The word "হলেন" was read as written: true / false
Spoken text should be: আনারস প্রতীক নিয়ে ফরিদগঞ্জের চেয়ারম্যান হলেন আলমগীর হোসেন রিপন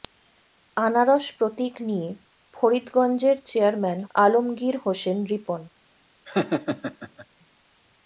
false